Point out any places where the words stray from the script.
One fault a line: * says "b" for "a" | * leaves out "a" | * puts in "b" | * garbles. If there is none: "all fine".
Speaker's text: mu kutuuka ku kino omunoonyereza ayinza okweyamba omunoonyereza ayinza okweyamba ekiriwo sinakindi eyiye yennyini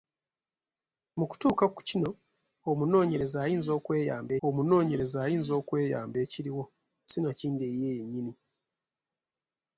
all fine